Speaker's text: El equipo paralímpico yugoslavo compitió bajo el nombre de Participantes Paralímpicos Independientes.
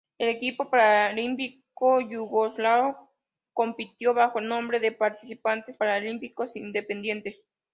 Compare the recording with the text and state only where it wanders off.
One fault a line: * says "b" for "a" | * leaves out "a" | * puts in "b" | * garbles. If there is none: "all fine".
all fine